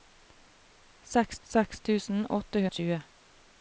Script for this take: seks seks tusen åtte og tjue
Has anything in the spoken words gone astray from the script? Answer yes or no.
no